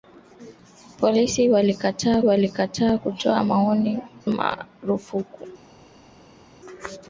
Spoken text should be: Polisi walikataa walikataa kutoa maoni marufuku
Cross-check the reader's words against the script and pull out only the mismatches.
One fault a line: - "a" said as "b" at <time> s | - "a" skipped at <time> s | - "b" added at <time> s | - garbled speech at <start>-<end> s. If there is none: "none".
none